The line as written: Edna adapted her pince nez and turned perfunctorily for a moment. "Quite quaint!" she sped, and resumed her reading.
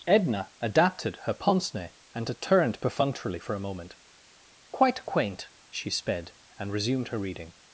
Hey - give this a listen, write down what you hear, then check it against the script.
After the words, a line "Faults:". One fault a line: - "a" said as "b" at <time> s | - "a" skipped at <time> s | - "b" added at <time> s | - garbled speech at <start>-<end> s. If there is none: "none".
Edna adapted her pince nez and turned perfunctorily for a moment. "Quite quaint!" she sped, and resumed her reading.
Faults:
none